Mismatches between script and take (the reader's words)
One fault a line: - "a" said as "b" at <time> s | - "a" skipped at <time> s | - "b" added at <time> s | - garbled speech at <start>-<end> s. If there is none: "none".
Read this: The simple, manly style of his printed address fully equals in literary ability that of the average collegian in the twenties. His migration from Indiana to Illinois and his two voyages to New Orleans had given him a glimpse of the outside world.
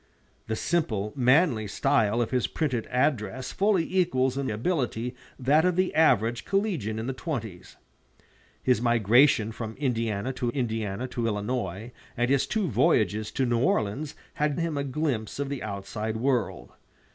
- "literary" skipped at 4.5 s
- "Indiana to" added at 10.5 s
- "given" skipped at 14.6 s